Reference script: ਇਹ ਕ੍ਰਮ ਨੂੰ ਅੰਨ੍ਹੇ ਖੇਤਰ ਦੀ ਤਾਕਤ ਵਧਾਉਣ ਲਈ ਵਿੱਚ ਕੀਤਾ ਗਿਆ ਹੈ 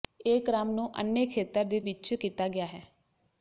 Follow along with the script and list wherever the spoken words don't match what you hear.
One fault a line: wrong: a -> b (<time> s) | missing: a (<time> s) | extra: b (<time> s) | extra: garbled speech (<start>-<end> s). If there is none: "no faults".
missing: ਤਾਕਤ ਵਧਾਉਣ ਲਈ (1.8 s)